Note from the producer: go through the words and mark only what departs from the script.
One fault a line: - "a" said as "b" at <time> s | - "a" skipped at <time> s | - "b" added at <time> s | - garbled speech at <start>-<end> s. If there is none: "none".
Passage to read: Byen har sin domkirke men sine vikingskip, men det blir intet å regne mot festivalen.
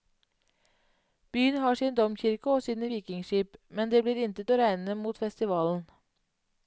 - "men" said as "og" at 2.5 s